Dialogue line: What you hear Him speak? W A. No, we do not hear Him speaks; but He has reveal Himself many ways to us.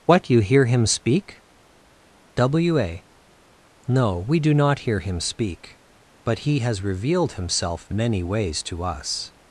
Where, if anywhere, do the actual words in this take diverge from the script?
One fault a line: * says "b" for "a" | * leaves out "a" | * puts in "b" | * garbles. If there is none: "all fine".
* says "speak" for "speaks"
* says "revealed" for "reveal"